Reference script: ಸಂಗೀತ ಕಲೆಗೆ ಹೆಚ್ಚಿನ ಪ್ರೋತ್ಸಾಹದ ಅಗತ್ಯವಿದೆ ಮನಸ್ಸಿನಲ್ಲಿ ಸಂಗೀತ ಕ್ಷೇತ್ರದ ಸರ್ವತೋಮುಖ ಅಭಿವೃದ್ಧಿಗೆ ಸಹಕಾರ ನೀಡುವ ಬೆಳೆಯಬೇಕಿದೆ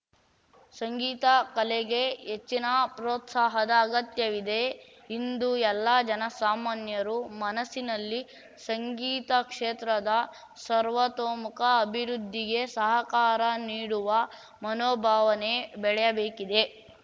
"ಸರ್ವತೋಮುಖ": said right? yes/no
yes